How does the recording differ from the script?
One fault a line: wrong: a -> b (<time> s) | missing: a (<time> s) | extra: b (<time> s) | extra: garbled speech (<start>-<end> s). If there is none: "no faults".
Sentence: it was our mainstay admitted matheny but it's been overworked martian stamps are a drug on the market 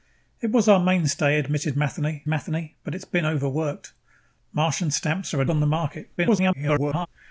extra: matheny (2.3 s)
missing: drug (5.4 s)
extra: garbled speech (6.2-7.1 s)